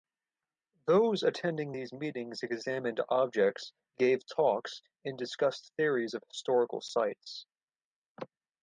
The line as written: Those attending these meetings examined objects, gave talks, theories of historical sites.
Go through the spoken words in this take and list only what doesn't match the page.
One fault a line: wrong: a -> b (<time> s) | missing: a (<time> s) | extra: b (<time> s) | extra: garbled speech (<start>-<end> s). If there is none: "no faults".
extra: and discussed (5.0 s)